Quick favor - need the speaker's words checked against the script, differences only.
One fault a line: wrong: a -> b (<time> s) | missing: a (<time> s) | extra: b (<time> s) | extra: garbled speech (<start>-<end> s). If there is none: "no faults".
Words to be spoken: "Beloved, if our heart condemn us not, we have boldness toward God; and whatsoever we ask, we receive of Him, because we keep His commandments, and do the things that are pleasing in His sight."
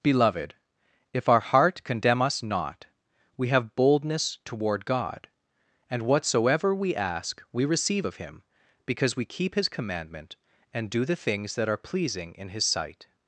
wrong: commandments -> commandment (9.7 s)